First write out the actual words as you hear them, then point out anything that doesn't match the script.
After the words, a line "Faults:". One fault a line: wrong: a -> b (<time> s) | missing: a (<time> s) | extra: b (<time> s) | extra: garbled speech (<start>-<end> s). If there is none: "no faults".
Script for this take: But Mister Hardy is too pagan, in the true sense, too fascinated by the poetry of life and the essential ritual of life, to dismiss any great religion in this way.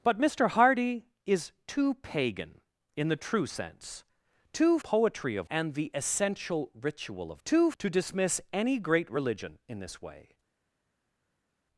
But Mister Hardy is too pagan, in the true sense, too poetry of and the essential ritual of too, to dismiss any great religion in this way.
Faults:
missing: fascinated by the (4.8 s)
missing: life (5.5 s)
wrong: life -> too (7.4 s)